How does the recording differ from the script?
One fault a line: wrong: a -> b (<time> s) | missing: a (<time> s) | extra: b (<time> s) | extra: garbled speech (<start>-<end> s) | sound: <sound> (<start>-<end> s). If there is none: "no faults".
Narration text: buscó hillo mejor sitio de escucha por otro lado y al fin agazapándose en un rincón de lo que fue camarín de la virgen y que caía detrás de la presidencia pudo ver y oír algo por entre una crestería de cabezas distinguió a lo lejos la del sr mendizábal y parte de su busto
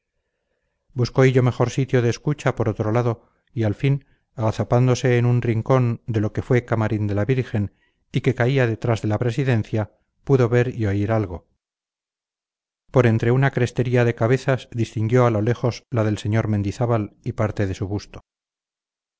no faults